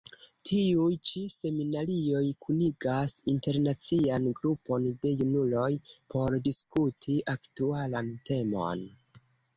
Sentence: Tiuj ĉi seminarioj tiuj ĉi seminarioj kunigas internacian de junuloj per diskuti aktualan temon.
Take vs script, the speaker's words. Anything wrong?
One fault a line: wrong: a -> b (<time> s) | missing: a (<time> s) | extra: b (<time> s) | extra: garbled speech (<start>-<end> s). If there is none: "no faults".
missing: tiuj ĉi seminarioj (2.2 s)
extra: grupon (4.4 s)
wrong: per -> por (6.1 s)